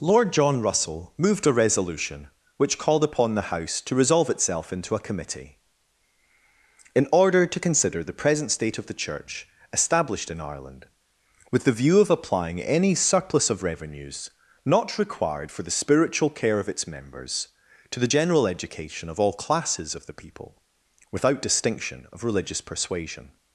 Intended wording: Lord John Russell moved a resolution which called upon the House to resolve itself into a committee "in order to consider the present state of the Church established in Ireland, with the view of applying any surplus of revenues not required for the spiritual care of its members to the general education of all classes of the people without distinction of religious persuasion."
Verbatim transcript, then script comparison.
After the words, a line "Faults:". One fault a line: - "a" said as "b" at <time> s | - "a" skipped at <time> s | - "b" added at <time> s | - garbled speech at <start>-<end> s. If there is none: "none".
Lord John Russell moved a resolution which called upon the House to resolve itself into a committee "in order to consider the present state of the Church established in Ireland, with the view of applying any surplus of revenues not required for the spiritual care of its members to the general education of all classes of the people without distinction of religious persuasion."
Faults:
none